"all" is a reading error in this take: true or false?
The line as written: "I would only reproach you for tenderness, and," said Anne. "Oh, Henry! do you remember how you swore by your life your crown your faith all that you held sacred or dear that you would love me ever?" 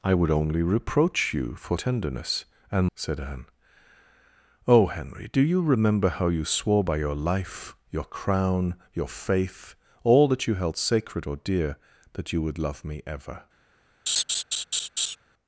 false